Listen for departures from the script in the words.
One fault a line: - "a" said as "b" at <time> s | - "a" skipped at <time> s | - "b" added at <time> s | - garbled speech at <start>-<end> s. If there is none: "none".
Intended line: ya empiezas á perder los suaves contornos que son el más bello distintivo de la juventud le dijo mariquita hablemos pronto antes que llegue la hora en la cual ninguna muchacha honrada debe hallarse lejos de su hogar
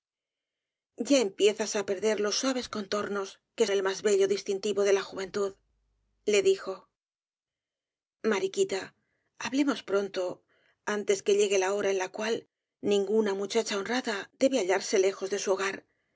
- "son" skipped at 3.7 s